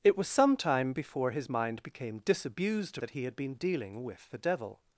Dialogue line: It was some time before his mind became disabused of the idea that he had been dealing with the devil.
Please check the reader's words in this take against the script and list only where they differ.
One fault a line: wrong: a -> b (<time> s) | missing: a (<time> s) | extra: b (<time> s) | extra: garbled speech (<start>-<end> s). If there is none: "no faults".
missing: of the idea (3.0 s)